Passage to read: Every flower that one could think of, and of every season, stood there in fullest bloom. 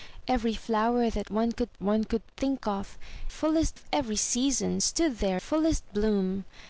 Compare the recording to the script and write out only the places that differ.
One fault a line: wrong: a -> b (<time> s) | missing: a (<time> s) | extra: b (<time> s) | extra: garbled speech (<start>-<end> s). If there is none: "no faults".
extra: one could (1.8 s)
wrong: and -> fullest (3.3 s)
missing: in (5.4 s)